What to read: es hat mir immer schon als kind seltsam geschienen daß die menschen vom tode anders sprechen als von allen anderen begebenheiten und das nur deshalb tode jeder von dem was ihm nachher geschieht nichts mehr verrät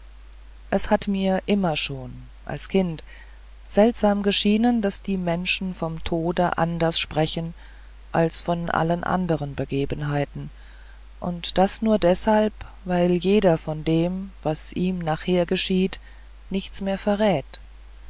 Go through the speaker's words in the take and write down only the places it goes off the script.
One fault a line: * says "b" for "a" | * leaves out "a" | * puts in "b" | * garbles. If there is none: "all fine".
* says "weil" for "tode"